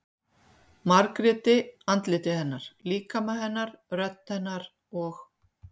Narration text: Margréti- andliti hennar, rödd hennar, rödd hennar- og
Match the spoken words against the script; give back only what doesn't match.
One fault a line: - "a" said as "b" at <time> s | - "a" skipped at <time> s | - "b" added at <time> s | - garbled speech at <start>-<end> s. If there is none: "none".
- "rödd" said as "líkama" at 2.9 s